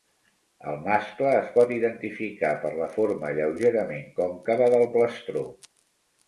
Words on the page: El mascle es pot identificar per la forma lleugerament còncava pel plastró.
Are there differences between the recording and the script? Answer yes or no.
yes